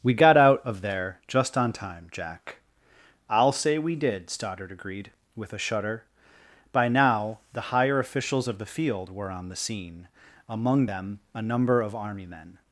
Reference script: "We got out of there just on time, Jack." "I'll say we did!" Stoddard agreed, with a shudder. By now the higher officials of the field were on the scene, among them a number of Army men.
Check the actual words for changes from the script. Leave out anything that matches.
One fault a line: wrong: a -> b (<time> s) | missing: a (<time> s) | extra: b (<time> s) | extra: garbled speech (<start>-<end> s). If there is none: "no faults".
no faults